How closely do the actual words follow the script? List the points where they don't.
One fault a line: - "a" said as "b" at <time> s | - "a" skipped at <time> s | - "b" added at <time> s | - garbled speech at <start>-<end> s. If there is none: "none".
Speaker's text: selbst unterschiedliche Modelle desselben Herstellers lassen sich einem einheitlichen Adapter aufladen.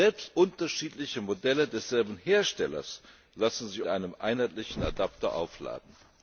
none